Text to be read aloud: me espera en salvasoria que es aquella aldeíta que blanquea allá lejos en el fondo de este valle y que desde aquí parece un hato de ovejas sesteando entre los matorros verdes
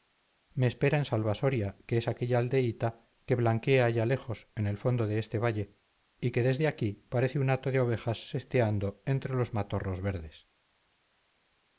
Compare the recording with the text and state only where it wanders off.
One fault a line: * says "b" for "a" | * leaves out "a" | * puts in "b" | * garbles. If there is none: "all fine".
all fine